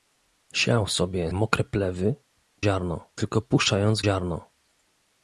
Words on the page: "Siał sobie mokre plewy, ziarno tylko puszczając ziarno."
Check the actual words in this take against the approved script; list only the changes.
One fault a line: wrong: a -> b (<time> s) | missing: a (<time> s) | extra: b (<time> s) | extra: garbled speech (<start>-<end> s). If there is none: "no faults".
no faults